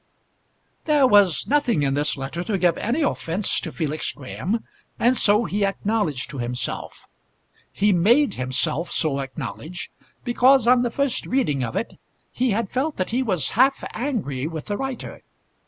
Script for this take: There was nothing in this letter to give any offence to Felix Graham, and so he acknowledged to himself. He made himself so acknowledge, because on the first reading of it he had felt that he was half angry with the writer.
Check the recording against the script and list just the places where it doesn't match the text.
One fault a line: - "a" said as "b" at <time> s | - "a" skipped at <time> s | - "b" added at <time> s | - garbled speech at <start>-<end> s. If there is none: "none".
none